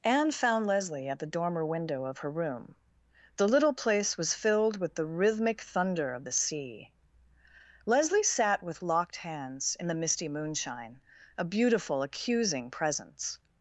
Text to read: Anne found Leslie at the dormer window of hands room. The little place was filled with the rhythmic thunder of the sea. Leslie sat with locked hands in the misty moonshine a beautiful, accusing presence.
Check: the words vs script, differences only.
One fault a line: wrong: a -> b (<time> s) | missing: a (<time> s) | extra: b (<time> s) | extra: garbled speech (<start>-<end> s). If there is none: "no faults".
wrong: hands -> her (2.2 s)